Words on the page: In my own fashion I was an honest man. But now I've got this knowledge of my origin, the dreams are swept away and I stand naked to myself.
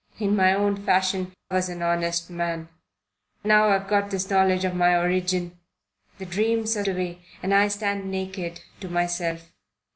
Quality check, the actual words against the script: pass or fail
fail